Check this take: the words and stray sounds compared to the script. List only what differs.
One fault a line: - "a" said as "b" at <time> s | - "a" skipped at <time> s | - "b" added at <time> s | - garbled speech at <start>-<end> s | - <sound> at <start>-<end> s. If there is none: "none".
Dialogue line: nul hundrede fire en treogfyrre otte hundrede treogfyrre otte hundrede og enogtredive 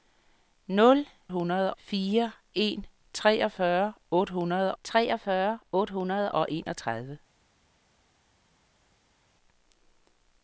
none